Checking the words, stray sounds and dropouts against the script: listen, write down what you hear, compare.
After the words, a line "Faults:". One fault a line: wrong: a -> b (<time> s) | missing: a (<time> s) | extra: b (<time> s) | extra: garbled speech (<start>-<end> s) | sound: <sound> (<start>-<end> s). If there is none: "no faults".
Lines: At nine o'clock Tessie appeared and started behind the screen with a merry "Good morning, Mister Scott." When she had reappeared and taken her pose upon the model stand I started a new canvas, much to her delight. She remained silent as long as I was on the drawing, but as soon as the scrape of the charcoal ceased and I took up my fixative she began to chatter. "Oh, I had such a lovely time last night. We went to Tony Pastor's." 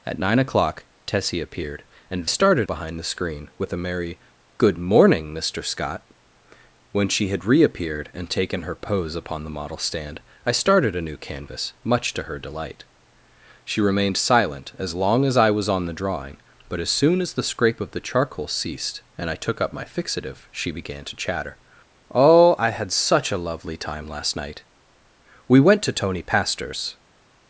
At nine o'clock Tessie appeared and started behind the screen with a merry "Good morning, Mister Scott." When she had reappeared and taken her pose upon the model stand I started a new canvas, much to her delight. She remained silent as long as I was on the drawing, but as soon as the scrape of the charcoal ceased and I took up my fixative she began to chatter. "Oh, I had such a lovely time last night. We went to Tony Pastor's."
Faults:
no faults